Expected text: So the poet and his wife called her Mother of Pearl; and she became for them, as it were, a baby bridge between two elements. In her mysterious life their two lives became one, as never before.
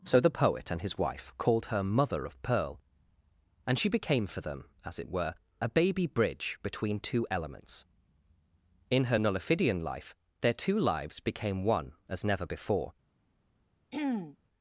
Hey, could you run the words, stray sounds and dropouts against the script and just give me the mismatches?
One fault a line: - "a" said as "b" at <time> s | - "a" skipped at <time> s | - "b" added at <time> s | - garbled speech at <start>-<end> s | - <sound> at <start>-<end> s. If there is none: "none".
- "mysterious" said as "nullifidian" at 9.2 s
- throat clearing at 13.9-14.4 s